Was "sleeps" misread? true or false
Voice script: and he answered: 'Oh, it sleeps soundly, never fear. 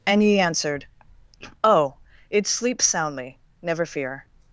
false